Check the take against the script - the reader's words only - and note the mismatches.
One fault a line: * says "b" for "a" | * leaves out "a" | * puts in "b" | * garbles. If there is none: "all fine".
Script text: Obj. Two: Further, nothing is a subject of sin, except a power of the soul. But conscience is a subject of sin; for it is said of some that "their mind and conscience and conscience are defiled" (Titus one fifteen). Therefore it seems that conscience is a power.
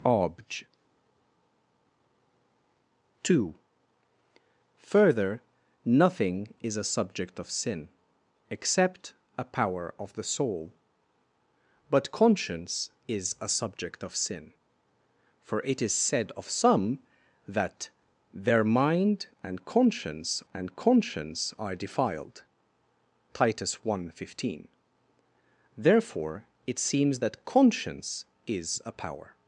all fine